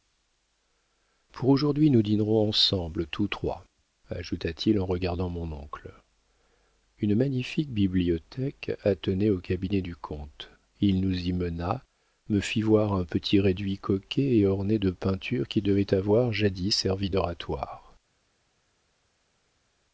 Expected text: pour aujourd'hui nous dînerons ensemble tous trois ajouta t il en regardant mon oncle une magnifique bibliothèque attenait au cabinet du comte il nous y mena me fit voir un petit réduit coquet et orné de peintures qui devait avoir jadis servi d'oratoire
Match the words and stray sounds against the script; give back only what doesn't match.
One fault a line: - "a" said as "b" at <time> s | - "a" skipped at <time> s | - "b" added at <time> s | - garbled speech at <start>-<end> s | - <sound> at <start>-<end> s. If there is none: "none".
none